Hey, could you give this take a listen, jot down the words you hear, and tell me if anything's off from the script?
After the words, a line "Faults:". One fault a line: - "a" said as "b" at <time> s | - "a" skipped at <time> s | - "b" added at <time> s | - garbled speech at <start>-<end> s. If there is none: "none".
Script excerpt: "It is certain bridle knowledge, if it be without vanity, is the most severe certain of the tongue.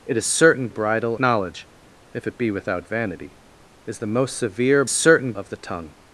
"It is certain bridle knowledge, if it be without vanity, is the most severe certain of the tongue.
Faults:
none